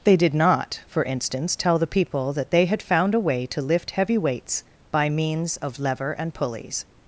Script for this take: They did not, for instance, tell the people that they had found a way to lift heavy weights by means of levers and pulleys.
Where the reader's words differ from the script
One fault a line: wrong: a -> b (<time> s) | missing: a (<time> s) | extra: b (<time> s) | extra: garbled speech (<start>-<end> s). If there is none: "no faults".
wrong: levers -> lever (5.8 s)